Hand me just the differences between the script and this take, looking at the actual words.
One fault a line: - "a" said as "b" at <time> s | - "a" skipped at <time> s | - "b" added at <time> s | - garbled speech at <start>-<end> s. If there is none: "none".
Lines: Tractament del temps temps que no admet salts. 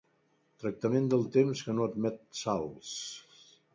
- "temps" skipped at 1.6 s